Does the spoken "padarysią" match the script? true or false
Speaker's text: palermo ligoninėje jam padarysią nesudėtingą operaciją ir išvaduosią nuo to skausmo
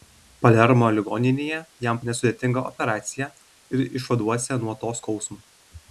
false